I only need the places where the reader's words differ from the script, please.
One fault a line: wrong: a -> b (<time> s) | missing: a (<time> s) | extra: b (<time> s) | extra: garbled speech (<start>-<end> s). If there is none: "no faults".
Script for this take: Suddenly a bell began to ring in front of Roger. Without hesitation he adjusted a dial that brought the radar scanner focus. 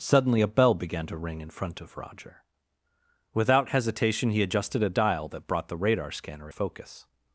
no faults